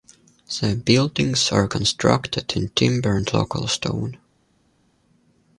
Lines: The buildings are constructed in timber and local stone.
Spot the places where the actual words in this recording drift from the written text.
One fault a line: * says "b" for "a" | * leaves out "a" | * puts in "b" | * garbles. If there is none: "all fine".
all fine